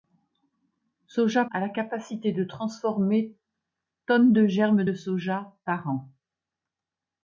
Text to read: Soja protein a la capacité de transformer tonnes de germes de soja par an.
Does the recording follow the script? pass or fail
fail